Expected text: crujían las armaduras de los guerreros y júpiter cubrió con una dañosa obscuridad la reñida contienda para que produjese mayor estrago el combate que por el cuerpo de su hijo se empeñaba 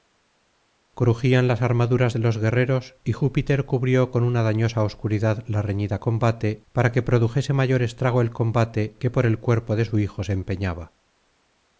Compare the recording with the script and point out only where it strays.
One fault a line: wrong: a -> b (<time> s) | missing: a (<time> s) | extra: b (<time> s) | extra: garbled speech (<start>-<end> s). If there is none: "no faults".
wrong: contienda -> combate (6.0 s)